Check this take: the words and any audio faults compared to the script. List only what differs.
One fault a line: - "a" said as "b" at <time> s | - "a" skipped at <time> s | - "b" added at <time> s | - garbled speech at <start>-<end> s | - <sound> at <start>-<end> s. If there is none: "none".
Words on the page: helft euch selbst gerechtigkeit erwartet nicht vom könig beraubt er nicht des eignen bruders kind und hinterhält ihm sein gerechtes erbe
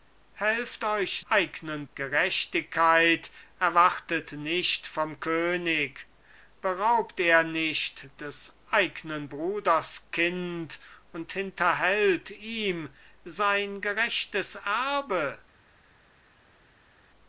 - "selbst" said as "eignen" at 1.3 s